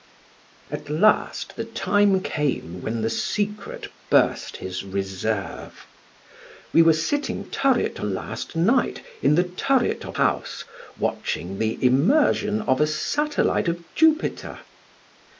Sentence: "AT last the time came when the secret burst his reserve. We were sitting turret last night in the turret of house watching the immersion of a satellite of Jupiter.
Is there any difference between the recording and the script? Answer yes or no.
no